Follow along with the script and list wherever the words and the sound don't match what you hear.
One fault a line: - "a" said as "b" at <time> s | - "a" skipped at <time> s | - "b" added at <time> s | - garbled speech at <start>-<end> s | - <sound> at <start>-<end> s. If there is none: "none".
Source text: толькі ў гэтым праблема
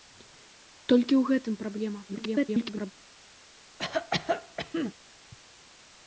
- garbled speech at 2.1-2.9 s
- cough at 3.8-4.9 s